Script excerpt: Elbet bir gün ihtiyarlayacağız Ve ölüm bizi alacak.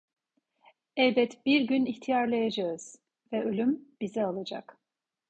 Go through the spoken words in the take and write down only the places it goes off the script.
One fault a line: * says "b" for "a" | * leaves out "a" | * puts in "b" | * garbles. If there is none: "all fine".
all fine